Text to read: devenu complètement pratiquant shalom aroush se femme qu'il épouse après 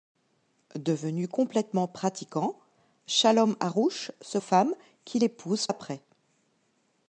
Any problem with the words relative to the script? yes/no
no